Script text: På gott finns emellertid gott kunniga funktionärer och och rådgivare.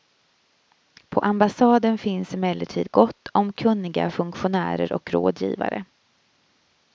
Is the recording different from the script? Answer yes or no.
yes